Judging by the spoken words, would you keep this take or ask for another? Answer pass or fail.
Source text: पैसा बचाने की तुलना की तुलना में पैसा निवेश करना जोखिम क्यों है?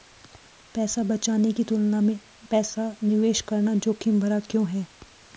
fail